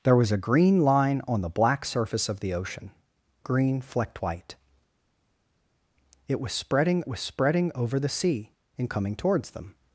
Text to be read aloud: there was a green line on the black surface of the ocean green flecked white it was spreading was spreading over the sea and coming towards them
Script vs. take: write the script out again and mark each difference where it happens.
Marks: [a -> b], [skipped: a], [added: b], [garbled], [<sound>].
there was a green line on the black surface of the ocean green flecked white it was spreading was spreading over the sea and coming towards them